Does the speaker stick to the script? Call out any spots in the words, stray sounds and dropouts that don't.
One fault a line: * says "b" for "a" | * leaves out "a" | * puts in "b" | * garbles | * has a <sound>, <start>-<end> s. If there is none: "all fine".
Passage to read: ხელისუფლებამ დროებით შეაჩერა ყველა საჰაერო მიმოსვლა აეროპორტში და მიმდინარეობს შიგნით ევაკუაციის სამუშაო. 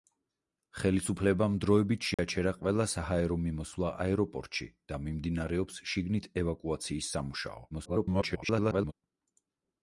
* has a dropout, 2.1-2.2 s
* garbles